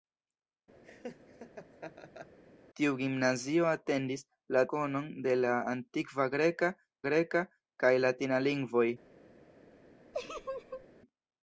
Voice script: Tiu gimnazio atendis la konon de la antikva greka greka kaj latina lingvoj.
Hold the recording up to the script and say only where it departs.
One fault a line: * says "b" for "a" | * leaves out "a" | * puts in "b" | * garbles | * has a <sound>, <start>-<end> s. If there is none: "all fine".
* has a laugh, 0.8-2.4 s
* has a laugh, 10.1-10.9 s